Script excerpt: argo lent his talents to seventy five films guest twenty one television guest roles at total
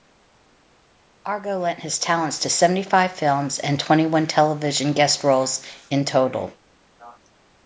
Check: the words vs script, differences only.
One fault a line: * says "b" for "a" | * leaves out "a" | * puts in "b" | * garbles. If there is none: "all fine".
* says "and" for "guest"
* says "in" for "at"